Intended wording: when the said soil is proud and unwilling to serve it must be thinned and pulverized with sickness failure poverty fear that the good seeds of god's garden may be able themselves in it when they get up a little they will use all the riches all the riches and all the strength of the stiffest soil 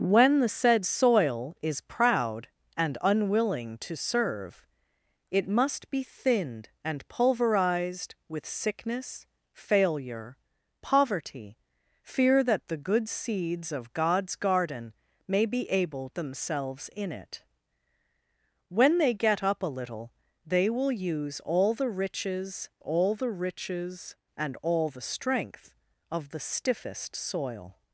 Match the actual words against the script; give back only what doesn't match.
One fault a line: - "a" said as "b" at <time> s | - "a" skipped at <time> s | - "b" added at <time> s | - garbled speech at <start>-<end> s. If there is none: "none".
none